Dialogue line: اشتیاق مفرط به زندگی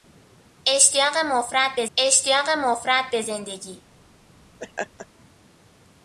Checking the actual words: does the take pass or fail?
fail